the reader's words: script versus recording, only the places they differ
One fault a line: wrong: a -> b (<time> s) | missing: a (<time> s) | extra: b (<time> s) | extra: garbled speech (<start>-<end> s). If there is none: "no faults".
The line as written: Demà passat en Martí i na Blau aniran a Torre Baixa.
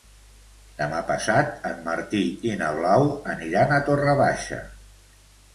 no faults